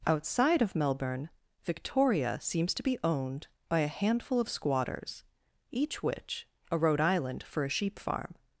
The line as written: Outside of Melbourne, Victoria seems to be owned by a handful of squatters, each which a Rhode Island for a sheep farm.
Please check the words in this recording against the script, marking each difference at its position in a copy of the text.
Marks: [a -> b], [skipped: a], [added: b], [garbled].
Outside of Melbourne, Victoria seems to be owned by a handful of squatters, each which a Rhode Island for a sheep farm.